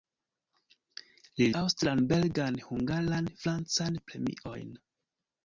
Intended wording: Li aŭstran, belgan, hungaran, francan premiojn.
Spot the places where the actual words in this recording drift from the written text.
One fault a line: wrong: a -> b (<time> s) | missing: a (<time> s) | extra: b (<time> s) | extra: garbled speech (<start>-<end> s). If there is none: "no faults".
no faults